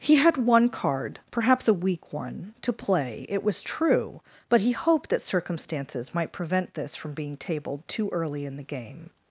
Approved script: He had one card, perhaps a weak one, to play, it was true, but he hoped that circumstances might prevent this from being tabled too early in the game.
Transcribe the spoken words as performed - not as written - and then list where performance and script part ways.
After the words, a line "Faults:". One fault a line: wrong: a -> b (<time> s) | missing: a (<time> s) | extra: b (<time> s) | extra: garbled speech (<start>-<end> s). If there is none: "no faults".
He had one card, perhaps a weak one, to play, it was true, but he hoped that circumstances might prevent this from being tabled too early in the game.
Faults:
no faults